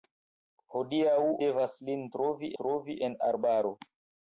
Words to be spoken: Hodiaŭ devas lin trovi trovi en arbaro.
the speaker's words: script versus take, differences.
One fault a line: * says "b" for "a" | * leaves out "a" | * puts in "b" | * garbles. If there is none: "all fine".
all fine